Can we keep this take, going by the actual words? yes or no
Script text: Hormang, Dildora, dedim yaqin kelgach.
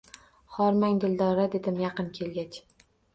yes